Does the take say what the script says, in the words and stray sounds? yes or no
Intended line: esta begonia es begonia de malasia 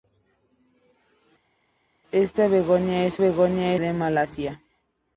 yes